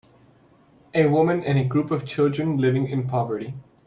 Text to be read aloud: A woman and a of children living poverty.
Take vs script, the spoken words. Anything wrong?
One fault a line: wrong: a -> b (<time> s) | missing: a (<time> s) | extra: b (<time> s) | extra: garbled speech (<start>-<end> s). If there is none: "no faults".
extra: group (1.7 s)
extra: in (2.9 s)